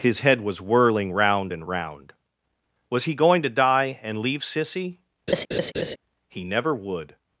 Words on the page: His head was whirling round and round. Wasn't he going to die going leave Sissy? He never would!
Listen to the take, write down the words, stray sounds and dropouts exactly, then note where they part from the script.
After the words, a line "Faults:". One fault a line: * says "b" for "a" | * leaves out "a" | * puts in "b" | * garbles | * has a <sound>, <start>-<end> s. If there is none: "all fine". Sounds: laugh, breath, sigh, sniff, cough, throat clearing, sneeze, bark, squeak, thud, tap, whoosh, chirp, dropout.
His head was whirling round and round. Was he going to die and leave Sissy? He never would!
Faults:
* says "Was" for "Wasn't"
* says "and" for "going"
* has a laugh, 5.3-6.0 s